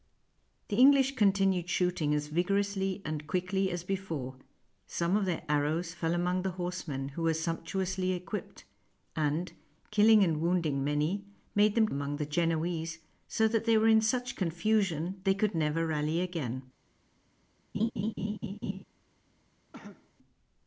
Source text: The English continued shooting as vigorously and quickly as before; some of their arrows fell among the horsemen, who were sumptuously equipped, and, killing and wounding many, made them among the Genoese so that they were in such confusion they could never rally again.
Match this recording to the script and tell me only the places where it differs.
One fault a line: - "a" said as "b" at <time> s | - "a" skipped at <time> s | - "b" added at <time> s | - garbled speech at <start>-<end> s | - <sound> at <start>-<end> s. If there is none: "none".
- laugh at 17.7-18.8 s
- cough at 19.7-20.1 s